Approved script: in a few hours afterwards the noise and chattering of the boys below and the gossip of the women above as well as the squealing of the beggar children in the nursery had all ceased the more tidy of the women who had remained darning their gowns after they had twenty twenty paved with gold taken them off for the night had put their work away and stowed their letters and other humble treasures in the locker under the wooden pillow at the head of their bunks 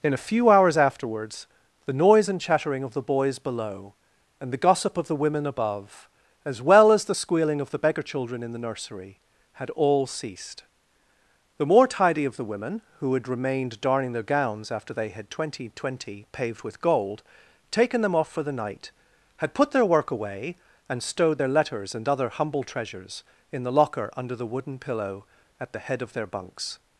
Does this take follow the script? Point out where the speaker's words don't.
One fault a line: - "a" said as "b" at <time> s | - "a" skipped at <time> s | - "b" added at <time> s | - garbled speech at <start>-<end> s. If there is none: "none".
none